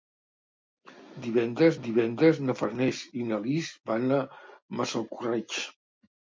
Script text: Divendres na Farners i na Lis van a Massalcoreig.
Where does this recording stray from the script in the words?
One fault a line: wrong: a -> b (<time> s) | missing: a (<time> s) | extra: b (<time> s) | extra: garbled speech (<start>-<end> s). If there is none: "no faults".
extra: divendres (1.9 s)